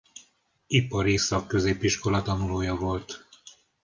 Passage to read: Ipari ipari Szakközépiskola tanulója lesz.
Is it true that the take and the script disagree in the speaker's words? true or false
true